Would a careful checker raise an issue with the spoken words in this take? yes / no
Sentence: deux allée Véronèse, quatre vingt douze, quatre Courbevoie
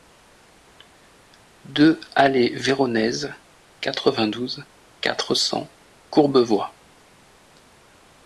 yes